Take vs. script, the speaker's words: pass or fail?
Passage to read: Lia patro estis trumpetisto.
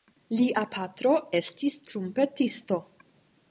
pass